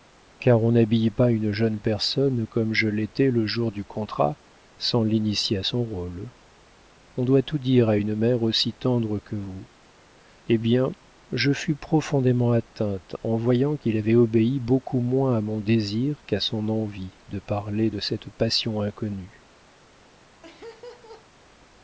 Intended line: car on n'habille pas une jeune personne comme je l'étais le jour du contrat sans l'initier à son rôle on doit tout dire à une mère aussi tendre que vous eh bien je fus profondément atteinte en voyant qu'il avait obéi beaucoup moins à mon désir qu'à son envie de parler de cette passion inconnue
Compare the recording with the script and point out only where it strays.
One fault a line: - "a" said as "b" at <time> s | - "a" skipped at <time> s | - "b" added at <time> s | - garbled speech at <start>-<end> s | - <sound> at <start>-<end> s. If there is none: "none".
- laugh at 20.4-21.3 s